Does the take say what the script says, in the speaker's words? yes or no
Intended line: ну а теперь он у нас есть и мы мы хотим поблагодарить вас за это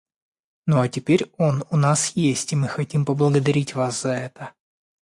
no